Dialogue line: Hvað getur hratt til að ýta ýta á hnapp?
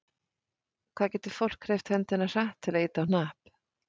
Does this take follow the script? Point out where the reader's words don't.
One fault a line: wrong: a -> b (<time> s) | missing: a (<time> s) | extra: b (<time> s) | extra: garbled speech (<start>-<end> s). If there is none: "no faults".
extra: fólk hreyft höndina (1.4 s)
missing: ýta (3.0 s)